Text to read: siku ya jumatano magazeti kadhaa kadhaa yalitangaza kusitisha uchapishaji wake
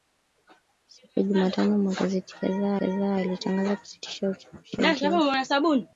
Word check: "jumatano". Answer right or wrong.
right